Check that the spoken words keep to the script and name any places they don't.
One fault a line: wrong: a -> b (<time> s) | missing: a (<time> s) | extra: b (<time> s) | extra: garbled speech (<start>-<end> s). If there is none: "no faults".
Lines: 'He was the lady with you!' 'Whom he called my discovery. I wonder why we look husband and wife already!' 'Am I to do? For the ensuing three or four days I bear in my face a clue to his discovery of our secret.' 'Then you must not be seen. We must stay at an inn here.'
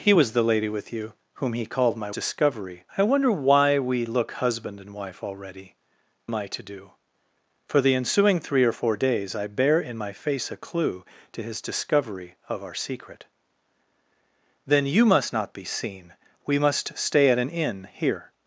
no faults